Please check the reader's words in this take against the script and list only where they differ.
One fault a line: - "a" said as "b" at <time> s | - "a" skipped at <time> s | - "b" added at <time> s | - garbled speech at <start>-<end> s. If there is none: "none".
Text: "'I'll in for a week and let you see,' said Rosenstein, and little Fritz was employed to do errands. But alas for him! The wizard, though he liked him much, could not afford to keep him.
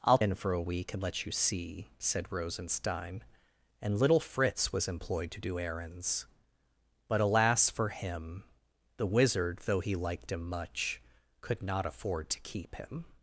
none